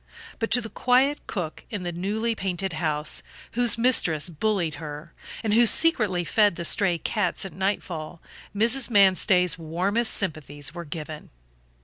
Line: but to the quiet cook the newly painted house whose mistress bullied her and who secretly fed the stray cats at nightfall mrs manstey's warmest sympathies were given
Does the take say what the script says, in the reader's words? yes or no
no